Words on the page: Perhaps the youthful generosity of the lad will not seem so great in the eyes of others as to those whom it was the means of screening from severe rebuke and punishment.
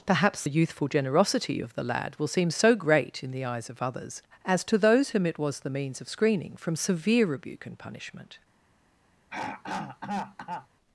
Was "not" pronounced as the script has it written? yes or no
no